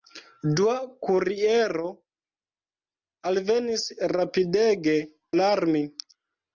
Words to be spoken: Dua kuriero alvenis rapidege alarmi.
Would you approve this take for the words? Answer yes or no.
yes